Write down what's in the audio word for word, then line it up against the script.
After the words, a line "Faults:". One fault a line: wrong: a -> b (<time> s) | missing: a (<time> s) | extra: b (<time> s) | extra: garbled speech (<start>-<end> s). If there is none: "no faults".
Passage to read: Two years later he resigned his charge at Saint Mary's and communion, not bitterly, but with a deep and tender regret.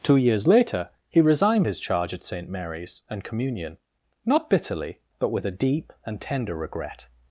Two years later he resigned his charge at Saint Mary's and communion, not bitterly, but with a deep and tender regret.
Faults:
no faults